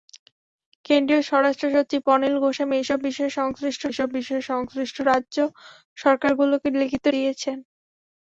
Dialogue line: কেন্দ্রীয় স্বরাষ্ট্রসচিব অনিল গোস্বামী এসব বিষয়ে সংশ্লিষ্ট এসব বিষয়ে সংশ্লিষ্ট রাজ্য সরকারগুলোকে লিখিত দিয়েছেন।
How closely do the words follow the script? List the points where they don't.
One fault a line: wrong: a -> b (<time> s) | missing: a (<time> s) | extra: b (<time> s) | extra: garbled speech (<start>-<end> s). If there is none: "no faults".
no faults